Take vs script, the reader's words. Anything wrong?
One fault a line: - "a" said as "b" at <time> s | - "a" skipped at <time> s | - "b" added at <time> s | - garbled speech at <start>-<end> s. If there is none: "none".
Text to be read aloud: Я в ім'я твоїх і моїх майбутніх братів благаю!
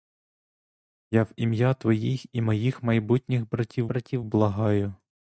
- "братів" added at 3.9 s